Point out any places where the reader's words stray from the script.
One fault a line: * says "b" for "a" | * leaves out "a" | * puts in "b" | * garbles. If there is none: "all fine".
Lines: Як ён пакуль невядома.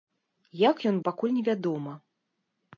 all fine